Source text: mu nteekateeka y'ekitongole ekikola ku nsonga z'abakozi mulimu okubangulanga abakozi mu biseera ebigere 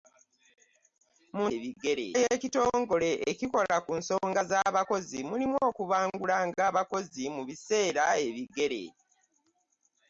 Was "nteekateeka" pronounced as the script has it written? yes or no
no